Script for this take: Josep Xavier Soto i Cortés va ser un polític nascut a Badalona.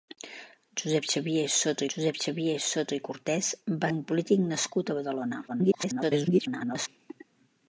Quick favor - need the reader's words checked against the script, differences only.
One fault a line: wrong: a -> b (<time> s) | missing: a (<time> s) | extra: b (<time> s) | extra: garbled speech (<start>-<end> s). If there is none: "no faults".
extra: josep Xavier Soto (1.9 s)
missing: ser (3.9 s)
extra: garbled speech (5.5-6.9 s)